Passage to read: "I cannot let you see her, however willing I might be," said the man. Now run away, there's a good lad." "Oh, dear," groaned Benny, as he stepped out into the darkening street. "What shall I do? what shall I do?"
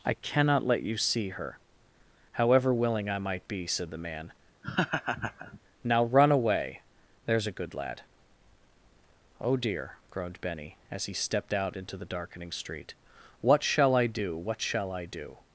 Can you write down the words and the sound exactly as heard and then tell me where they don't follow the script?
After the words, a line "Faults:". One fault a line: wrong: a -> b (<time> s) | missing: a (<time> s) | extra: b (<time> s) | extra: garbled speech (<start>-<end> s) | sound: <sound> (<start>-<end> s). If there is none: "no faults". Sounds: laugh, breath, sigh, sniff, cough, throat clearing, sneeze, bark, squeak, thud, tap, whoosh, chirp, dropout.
"I cannot let you see her, however willing I might be," said the man. Now run away, there's a good lad." "Oh, dear," groaned Benny, as he stepped out into the darkening street. "What shall I do? what shall I do?"
Faults:
sound: laugh (4.6-5.6 s)